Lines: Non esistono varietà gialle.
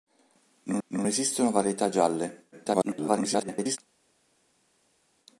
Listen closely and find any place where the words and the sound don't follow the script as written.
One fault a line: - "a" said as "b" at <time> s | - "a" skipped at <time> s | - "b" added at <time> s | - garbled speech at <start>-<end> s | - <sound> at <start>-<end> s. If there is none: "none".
- "non" added at 0.9 s
- garbled speech at 2.5-3.8 s